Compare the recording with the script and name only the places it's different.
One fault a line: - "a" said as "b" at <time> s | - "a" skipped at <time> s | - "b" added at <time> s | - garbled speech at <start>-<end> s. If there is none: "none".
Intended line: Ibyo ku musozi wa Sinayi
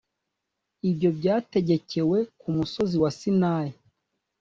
- "byategekewe" added at 1.2 s